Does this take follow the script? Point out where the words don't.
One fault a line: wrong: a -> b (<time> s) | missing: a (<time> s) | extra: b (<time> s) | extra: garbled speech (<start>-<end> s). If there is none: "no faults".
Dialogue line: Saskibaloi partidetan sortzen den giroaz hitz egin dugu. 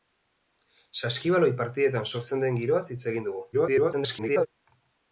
extra: garbled speech (3.5-4.5 s)